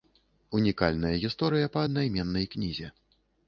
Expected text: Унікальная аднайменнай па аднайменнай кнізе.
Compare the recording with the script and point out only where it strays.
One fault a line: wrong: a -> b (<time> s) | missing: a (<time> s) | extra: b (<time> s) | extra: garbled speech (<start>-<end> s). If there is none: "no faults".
wrong: аднайменнай -> гісторыя (1.3 s)